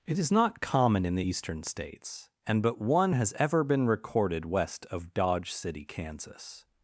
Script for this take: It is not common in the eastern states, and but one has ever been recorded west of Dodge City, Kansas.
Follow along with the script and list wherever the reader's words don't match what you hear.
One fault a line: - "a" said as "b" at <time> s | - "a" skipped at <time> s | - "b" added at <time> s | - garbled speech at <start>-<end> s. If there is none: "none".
none